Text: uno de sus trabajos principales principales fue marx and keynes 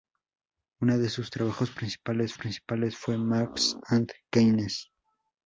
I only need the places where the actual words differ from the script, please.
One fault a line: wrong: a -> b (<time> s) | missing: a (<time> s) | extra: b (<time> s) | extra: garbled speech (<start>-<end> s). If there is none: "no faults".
no faults